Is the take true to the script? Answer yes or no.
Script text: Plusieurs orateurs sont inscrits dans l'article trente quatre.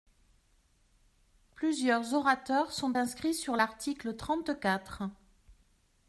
no